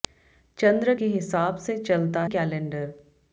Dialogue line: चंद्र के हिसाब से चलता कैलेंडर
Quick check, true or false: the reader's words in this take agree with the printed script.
true